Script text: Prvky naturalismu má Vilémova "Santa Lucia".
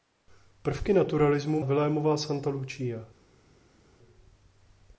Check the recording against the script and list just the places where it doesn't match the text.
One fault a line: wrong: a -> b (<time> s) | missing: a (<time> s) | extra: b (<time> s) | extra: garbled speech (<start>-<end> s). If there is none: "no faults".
missing: má (1.6 s)